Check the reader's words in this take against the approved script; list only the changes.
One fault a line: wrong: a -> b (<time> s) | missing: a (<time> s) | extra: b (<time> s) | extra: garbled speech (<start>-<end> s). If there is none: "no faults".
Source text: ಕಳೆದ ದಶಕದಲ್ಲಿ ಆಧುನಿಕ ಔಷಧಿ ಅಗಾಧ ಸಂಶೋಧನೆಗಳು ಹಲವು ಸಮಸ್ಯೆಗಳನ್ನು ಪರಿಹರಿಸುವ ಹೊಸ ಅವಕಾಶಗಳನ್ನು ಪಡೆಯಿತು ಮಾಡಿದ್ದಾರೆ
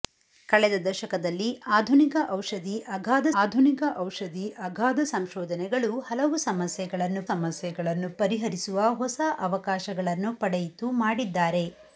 extra: ಆಧುನಿಕ ಔಷಧಿ ಅಗಾಧ (3.4 s)
extra: ಸಮಸ್ಯೆಗಳನ್ನು (7.3 s)